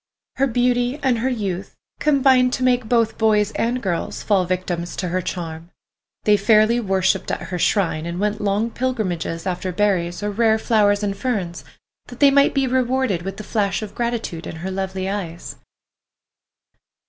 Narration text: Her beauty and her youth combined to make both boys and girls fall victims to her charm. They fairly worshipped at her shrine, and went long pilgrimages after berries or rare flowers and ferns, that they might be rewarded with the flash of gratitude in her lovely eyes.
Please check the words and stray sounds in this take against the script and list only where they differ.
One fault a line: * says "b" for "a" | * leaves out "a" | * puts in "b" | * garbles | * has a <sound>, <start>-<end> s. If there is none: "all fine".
all fine